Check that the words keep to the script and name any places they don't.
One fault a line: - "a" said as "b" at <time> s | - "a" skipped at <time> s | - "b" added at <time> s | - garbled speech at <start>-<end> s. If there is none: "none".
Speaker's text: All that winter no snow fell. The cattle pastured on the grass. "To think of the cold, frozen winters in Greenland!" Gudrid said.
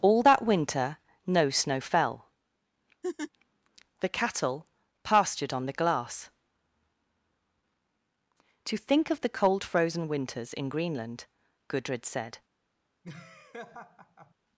- "grass" said as "glass" at 5.7 s